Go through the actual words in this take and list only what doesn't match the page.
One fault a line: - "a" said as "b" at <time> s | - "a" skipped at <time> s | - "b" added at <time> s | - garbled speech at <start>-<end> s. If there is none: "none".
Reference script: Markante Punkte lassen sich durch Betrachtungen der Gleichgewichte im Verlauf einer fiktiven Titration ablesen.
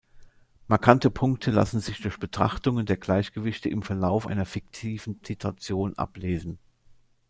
none